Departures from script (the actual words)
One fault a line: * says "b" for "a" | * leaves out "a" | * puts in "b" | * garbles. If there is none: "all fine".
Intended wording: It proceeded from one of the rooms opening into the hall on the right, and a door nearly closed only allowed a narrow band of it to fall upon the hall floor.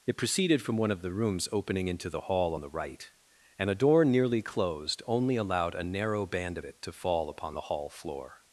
all fine